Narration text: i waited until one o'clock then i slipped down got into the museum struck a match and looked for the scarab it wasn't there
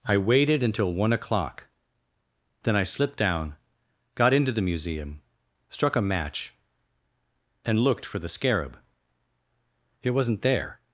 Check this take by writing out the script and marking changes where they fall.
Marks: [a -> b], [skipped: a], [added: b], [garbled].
i waited until one o'clock then i slipped down got into the museum struck a match and looked for the scarab it wasn't there